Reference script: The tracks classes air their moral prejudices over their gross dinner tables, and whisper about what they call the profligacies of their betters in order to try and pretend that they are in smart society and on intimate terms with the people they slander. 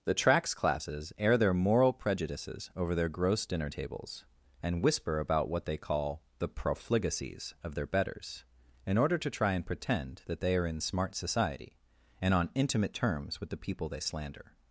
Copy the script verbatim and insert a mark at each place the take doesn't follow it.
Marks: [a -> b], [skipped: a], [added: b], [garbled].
The tracks classes air their moral prejudices over their gross dinner tables, and whisper about what they call the profligacies of their betters in order to try and pretend that they are in smart society and on intimate terms with the people they slander.